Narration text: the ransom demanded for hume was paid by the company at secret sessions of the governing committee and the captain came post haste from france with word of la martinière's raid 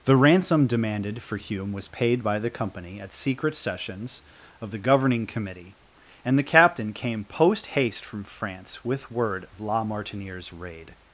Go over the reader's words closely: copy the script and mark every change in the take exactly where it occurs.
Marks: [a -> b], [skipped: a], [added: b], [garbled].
the ransom demanded for hume was paid by the company at secret sessions of the governing committee and the captain came post haste from france with word of la martinière's raid